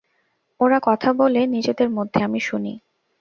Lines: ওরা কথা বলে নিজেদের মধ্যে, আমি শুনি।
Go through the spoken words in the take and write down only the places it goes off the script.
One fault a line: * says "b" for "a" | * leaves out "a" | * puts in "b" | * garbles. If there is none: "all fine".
all fine